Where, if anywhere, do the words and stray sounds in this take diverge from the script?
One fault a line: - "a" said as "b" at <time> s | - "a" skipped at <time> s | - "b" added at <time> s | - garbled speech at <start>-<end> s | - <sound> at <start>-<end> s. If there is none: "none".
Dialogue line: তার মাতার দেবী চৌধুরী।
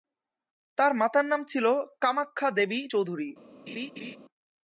- "নাম ছিল কামাখ্যা" added at 1.2 s
- laugh at 3.7-4.2 s